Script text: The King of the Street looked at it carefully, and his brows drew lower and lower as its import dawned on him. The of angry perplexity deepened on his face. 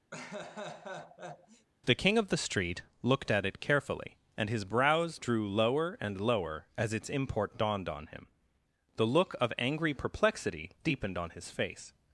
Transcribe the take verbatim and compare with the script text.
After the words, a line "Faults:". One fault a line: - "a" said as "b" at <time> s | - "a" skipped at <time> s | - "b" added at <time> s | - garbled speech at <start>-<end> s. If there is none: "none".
The King of the Street looked at it carefully, and his brows drew lower and lower as its import dawned on him. The look of angry perplexity deepened on his face.
Faults:
- "look" added at 9.0 s